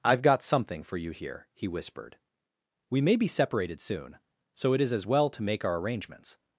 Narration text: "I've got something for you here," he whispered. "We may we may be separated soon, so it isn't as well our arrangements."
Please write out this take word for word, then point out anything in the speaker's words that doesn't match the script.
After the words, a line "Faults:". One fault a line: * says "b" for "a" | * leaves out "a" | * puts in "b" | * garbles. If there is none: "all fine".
"I've got something for you here," he whispered. "We may be separated soon, so it is as well to make our arrangements."
Faults:
* leaves out "we may"
* says "is" for "isn't"
* puts in "to make"